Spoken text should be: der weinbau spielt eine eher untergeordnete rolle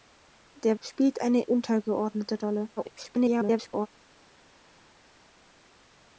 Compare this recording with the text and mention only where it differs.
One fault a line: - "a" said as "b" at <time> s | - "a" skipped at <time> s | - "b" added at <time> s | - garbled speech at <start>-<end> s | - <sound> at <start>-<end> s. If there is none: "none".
- "weinbau" skipped at 0.8 s
- "eher" skipped at 1.5 s
- garbled speech at 2.8-3.9 s